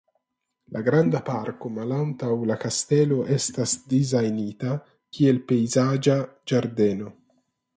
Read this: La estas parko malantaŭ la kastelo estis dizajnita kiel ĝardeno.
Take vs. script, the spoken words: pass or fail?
fail